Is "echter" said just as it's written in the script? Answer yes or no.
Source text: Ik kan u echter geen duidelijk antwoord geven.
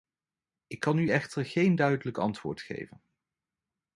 yes